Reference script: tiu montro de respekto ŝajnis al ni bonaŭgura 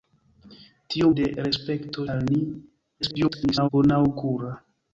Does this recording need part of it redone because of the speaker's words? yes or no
yes